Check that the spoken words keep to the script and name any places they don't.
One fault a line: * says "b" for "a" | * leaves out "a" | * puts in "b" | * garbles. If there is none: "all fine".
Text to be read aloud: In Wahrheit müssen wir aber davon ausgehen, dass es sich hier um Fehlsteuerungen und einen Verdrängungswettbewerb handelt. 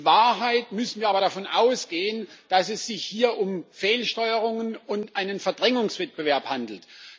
all fine